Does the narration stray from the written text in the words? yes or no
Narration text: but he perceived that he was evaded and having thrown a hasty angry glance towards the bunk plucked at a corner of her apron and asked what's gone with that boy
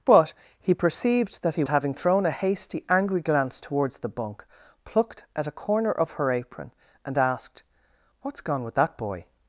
yes